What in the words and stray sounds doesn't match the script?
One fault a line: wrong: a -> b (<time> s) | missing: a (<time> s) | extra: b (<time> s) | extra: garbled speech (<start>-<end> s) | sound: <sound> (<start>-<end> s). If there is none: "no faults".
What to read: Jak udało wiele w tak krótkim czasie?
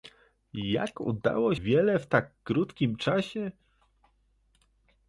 no faults